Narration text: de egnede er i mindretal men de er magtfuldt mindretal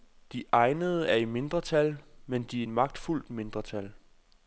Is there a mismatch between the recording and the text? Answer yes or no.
no